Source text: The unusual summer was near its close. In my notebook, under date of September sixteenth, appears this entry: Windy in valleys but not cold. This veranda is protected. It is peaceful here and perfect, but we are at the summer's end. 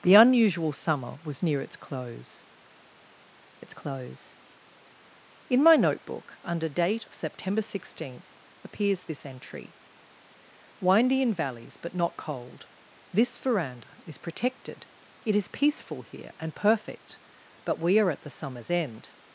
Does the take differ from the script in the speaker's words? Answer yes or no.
yes